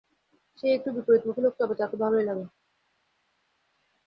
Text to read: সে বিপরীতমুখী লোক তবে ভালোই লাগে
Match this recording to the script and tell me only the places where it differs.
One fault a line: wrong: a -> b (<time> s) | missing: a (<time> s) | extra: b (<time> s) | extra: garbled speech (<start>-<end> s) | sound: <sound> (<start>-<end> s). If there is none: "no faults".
extra: একটু (0.7 s)
extra: তাকে (1.8 s)